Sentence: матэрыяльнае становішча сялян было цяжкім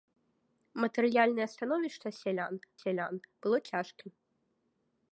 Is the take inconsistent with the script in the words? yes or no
yes